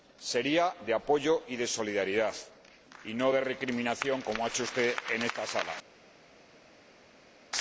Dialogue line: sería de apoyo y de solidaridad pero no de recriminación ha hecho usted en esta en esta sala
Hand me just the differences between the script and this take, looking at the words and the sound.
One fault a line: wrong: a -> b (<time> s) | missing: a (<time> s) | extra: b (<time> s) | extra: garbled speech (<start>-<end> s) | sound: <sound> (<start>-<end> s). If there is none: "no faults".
wrong: pero -> y (3.0 s)
extra: como (4.2 s)
missing: en esta (5.5 s)